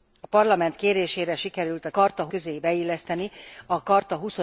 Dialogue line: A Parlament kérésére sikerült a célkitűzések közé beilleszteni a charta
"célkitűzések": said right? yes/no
no